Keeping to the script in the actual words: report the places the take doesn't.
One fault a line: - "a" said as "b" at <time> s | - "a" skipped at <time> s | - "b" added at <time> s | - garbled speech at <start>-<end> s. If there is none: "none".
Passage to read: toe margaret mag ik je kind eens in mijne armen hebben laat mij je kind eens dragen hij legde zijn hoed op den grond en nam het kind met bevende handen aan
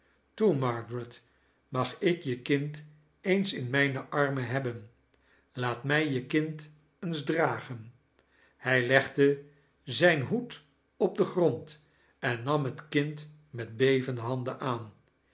none